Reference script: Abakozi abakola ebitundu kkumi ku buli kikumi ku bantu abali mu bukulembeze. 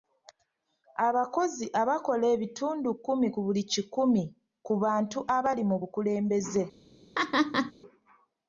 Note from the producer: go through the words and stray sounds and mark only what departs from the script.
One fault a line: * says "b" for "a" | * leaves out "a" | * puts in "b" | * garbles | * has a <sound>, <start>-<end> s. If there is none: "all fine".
* has a laugh, 7.1-7.7 s